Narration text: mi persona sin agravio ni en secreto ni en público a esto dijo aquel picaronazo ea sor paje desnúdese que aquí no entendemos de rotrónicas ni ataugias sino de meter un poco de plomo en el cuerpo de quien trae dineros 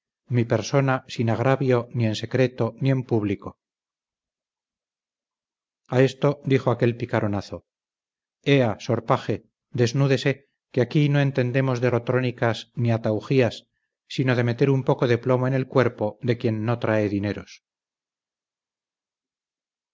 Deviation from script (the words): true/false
true